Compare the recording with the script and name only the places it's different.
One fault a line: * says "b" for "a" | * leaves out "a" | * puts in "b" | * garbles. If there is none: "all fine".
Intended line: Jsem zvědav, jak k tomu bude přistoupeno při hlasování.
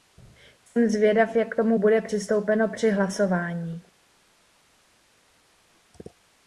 all fine